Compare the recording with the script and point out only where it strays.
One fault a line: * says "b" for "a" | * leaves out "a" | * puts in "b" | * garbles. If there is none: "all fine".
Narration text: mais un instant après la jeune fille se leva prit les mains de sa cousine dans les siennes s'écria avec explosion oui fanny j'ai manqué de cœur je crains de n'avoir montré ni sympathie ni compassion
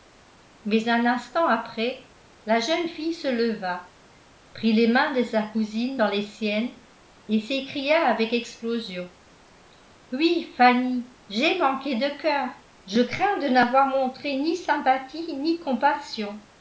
* puts in "et"